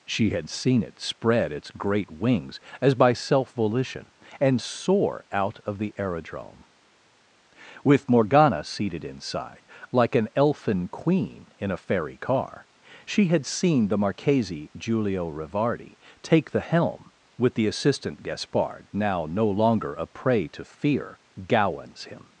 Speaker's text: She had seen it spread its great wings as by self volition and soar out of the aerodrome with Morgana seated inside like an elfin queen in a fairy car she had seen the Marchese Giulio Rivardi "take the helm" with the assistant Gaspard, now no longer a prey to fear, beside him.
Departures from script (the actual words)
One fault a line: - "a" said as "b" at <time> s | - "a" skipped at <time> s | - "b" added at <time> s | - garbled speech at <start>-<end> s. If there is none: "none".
- "beside" said as "gowans" at 21.5 s